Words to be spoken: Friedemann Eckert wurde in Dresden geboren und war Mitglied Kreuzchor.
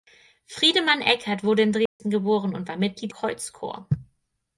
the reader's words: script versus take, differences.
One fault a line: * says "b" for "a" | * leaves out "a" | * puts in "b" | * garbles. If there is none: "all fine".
all fine